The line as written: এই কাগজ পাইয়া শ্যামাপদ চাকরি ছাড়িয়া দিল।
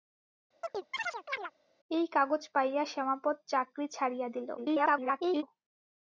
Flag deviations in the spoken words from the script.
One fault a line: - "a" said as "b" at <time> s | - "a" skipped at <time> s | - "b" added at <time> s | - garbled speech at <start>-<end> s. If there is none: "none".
- garbled speech at 4.6-5.4 s